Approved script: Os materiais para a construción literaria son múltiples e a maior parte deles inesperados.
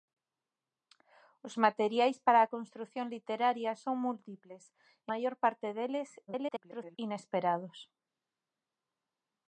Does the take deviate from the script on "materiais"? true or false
false